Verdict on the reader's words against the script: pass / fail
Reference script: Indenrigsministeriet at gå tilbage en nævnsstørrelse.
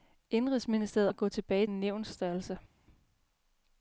pass